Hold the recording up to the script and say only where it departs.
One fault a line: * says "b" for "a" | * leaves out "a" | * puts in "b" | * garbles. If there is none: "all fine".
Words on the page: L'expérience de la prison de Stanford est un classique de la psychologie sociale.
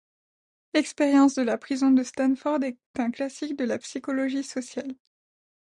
all fine